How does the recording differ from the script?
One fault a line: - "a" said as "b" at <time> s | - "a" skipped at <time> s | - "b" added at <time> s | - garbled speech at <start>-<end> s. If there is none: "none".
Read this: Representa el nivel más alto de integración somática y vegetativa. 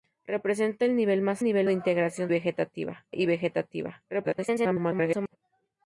- "alto" said as "nivel" at 1.4 s
- "somática" said as "vegetativa" at 2.3 s
- garbled speech at 4.1-5.4 s